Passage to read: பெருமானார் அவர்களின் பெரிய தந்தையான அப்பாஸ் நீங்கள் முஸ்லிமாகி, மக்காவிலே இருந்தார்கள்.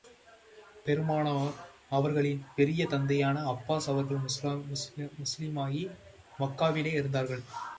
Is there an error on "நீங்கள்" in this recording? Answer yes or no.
yes